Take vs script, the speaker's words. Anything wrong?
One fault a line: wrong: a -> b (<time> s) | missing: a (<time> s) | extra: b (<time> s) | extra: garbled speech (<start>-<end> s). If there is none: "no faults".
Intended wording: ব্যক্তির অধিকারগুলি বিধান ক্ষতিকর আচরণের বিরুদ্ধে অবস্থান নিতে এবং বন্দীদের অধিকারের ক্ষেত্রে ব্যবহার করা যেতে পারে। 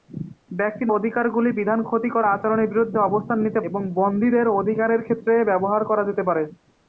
no faults